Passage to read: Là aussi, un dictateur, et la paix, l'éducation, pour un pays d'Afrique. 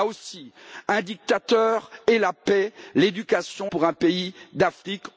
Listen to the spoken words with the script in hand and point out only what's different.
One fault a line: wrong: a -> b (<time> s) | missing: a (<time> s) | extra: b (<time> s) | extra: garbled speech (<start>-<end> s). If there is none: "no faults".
no faults